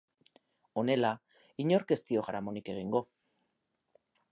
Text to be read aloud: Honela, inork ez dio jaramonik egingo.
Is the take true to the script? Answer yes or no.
yes